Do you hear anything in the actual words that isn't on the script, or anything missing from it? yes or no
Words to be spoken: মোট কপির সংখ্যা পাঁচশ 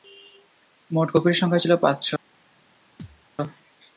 yes